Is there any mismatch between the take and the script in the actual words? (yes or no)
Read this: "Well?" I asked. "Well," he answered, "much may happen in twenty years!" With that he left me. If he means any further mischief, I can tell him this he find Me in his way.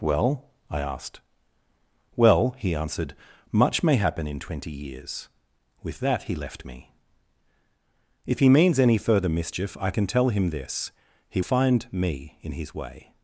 no